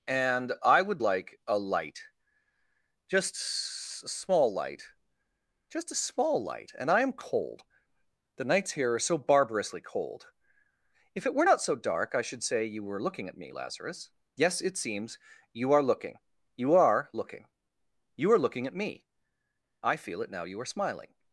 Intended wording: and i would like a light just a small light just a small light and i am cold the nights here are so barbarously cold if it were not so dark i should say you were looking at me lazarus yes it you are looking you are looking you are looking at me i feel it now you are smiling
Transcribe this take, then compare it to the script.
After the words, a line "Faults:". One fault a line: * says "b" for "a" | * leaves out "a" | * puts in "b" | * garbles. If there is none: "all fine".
and i would like a light just a small light just a small light and i am cold the nights here are so barbarously cold if it were not so dark i should say you were looking at me lazarus yes it seems you are looking you are looking you are looking at me i feel it now you are smiling
Faults:
* puts in "seems"